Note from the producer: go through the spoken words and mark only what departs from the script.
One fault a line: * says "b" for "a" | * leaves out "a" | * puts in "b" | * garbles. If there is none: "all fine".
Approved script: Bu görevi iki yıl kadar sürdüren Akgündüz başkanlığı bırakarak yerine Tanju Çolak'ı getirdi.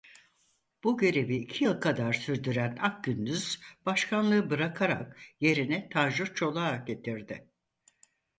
all fine